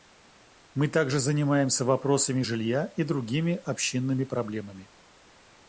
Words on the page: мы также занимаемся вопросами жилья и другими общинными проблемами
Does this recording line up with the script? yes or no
yes